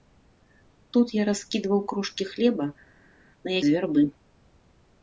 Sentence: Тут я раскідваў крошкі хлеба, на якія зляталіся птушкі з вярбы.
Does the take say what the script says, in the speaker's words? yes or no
no